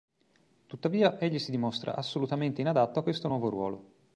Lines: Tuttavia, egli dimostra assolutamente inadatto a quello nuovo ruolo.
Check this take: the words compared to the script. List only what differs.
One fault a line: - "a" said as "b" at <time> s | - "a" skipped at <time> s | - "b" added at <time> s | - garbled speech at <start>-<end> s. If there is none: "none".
- "si" added at 1.4 s
- "quello" said as "questo" at 3.0 s